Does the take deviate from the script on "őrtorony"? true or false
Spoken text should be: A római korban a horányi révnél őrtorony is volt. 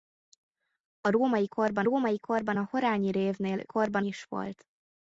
true